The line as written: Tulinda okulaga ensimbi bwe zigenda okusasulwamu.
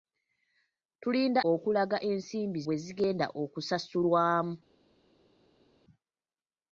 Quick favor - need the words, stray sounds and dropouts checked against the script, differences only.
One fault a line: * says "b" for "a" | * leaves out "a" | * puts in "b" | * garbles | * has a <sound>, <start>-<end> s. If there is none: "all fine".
all fine